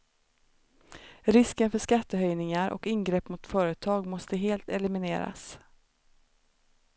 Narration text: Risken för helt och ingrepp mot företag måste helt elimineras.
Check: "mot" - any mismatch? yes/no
no